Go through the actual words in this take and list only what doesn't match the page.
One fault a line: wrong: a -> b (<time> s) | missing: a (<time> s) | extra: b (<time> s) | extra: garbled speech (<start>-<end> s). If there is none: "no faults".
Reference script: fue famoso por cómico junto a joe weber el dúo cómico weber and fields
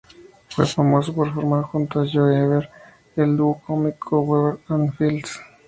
wrong: cómico -> formar (1.3 s)